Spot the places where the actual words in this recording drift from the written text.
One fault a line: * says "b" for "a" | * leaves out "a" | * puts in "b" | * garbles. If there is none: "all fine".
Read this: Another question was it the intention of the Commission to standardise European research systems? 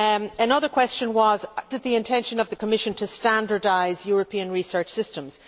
all fine